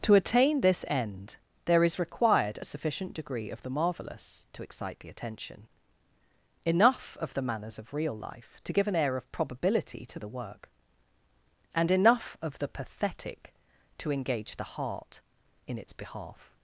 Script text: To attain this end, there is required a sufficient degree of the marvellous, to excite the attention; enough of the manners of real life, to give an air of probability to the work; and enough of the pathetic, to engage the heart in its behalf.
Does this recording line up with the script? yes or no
yes